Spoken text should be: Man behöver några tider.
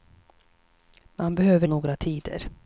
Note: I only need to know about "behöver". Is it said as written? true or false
true